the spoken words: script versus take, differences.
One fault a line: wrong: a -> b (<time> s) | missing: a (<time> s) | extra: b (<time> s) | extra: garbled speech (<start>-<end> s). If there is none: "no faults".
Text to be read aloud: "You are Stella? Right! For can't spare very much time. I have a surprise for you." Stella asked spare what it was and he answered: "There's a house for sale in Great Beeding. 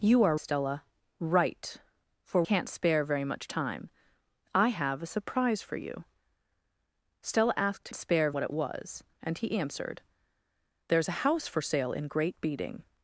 no faults